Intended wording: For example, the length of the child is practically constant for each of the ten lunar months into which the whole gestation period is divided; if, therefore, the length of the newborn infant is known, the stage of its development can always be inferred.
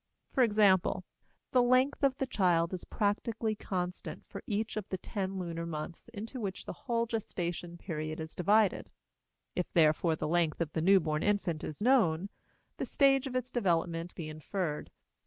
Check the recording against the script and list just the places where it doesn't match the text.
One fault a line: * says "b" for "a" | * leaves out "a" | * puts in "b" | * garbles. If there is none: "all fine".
* leaves out "can always"